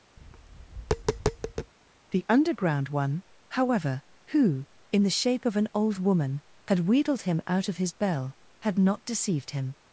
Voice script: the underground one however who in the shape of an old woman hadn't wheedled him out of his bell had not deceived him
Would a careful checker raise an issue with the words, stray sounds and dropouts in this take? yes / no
yes